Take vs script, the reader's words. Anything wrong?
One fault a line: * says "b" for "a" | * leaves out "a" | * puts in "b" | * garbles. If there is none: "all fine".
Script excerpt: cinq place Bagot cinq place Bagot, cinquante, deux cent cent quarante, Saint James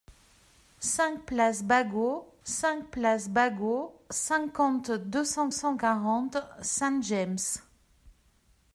all fine